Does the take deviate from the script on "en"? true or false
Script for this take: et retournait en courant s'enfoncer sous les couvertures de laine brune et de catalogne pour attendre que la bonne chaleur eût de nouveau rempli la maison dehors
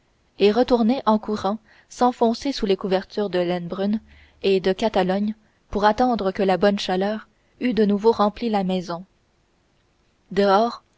false